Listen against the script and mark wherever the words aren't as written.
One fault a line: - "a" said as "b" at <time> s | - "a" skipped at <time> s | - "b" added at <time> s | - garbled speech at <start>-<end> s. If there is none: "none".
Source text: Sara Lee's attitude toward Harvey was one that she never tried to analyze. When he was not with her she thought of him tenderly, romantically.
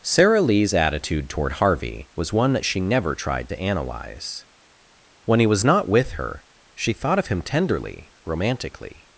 none